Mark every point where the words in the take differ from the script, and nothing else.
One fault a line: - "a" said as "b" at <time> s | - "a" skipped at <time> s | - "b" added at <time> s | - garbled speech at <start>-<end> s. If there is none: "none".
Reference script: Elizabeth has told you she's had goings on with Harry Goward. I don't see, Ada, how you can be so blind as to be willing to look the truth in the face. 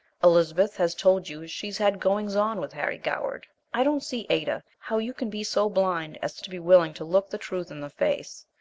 none